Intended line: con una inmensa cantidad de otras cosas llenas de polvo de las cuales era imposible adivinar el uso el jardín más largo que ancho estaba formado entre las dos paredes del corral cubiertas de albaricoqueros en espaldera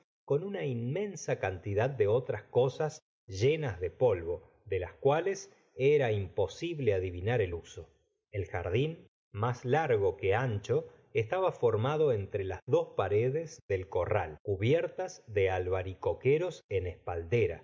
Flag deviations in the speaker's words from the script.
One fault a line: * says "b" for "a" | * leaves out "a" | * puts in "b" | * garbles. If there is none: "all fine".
all fine